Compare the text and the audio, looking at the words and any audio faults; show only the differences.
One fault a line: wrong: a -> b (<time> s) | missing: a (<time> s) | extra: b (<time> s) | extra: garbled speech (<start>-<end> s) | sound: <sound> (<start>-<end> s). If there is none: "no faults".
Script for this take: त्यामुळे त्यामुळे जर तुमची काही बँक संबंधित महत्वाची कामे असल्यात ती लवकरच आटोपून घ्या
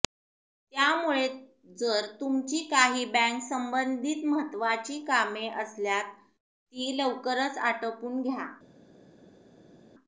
missing: त्यामुळे (1.3 s)